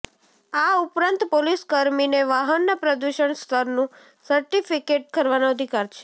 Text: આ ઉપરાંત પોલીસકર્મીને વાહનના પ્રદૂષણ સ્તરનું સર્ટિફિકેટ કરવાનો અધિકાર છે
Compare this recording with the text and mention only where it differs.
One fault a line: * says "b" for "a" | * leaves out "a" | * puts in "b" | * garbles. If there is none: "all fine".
all fine